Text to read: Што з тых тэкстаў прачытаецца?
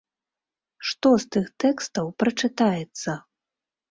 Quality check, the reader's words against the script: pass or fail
pass